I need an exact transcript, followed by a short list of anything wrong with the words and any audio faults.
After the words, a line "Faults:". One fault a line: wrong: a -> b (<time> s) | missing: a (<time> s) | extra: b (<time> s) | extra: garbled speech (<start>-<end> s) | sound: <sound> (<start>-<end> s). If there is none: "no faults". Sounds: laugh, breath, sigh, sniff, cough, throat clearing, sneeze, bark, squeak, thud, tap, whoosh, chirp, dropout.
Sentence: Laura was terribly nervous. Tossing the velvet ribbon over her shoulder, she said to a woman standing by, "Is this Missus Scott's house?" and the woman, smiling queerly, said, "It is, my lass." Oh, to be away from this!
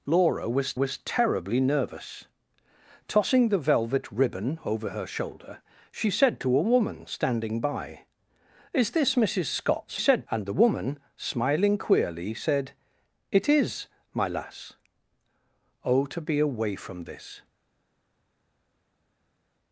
Laura was was terribly nervous. Tossing the velvet ribbon over her shoulder, she said to a woman standing by, "Is this Missus Scott's said?" and the woman, smiling queerly, said, "It is, my lass." Oh, to be away from this!
Faults:
extra: was (0.7 s)
wrong: house -> said (9.9 s)